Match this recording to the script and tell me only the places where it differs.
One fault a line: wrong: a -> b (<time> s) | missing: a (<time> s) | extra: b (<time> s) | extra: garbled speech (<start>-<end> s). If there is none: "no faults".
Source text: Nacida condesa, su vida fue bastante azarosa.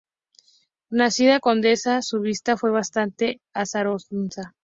no faults